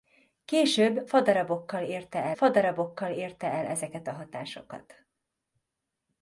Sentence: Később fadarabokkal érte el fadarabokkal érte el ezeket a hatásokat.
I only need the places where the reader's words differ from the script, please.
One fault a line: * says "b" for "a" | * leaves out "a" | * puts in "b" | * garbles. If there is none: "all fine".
all fine